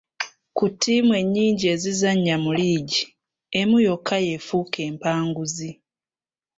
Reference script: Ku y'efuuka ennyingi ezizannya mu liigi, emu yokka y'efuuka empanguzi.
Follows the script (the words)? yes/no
no